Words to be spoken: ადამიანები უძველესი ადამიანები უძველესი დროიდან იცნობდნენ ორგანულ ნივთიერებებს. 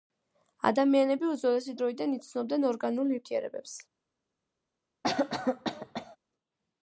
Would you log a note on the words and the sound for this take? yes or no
yes